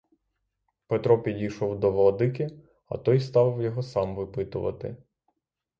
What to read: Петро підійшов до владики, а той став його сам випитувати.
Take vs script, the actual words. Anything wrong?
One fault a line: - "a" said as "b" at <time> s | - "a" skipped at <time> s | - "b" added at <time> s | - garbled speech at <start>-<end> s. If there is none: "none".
none